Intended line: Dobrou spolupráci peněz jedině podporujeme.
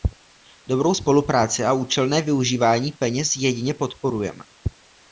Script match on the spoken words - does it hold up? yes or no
no